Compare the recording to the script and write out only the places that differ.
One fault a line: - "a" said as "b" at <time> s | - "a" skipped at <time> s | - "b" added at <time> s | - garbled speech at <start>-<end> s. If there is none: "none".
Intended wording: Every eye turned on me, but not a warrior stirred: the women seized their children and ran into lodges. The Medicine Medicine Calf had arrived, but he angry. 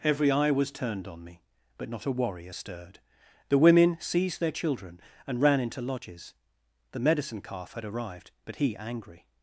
- "was" added at 0.5 s
- "Medicine" skipped at 7.4 s